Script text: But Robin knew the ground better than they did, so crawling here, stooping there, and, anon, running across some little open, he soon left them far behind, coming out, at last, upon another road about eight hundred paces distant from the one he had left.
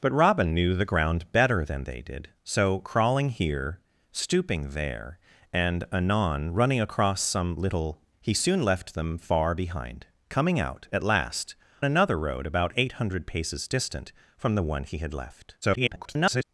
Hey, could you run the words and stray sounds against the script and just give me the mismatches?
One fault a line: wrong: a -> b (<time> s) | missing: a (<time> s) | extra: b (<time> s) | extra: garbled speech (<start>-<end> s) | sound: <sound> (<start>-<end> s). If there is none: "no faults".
missing: open (8.0 s)
missing: upon (11.5 s)
extra: garbled speech (15.6-16.4 s)